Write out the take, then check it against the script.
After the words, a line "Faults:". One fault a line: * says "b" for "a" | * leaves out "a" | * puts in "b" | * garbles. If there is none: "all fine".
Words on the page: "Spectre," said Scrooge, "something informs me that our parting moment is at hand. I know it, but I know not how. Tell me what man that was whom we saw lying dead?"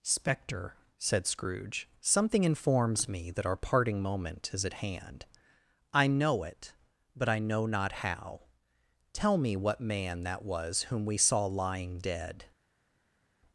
"Spectre," said Scrooge, "something informs me that our parting moment is at hand. I know it, but I know not how. Tell me what man that was whom we saw lying dead?"
Faults:
all fine